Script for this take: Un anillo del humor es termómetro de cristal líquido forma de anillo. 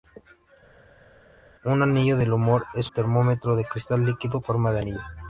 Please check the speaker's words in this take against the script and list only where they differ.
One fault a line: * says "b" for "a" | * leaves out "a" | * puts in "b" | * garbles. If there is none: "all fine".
all fine